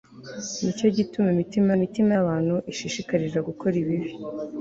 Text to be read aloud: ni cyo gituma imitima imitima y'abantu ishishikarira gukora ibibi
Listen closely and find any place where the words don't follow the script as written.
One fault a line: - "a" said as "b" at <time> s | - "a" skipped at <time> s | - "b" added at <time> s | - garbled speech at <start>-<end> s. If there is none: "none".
none